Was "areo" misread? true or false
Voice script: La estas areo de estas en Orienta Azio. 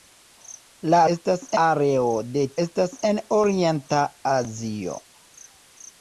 false